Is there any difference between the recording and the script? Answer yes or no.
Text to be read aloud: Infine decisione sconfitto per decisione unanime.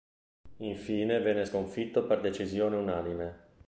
yes